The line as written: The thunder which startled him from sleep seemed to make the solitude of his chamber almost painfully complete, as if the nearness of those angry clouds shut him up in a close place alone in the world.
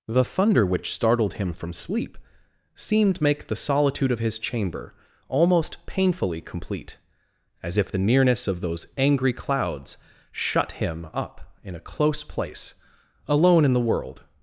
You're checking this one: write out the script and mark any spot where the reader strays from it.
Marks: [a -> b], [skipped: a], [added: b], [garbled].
The thunder which startled him from sleep seemed [skipped: to] make the solitude of his chamber almost painfully complete, as if the nearness of those angry clouds shut him up in a close place alone in the world.